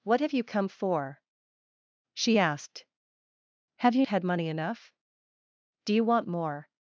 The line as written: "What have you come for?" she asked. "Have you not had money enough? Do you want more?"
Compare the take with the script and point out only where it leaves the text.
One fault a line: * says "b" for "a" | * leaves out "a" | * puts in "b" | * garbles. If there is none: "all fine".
* leaves out "not"